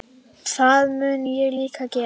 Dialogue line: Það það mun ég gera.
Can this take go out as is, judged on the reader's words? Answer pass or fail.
fail